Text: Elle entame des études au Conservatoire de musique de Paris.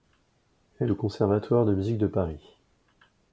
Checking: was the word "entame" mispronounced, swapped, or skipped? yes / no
yes